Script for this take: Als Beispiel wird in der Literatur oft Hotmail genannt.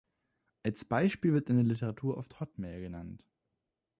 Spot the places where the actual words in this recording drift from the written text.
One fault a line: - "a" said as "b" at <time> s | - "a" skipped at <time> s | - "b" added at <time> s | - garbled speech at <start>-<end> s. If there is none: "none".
none